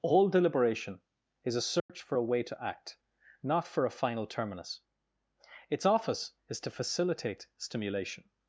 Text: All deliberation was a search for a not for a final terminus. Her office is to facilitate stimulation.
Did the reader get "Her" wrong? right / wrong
wrong